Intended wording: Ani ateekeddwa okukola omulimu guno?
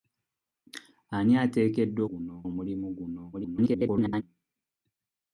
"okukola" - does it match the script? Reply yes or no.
no